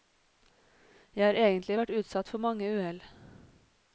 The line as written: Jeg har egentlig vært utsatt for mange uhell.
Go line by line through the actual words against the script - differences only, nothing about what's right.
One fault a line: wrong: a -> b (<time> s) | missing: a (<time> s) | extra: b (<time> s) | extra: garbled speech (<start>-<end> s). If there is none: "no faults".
no faults